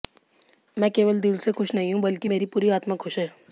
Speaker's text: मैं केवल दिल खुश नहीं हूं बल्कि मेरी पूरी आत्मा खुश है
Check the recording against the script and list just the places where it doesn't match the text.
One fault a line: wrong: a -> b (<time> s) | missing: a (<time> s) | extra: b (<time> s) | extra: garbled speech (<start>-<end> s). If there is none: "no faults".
extra: से (1.4 s)